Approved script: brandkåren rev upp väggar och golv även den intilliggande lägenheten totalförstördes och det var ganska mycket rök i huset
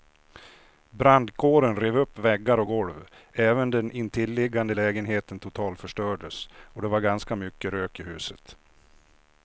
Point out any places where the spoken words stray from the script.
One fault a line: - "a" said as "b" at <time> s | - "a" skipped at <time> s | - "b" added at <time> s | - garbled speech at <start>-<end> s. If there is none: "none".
none